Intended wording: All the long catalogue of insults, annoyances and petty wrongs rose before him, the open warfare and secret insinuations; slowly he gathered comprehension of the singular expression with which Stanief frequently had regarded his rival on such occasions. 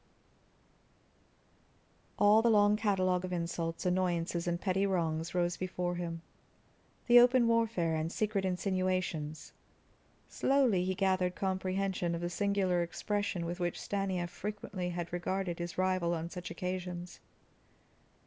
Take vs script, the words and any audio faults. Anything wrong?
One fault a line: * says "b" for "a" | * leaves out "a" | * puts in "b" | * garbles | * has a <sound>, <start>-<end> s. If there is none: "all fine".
all fine